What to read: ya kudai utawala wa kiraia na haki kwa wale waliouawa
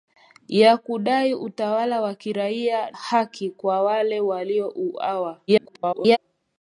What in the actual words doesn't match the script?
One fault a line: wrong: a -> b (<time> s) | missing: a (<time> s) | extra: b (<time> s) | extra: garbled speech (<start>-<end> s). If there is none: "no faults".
missing: na (2.9 s)
extra: garbled speech (5.5-6.2 s)